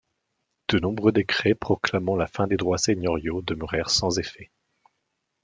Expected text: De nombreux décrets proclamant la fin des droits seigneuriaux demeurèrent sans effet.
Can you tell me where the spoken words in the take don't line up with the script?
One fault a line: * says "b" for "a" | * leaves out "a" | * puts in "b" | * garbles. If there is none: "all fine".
all fine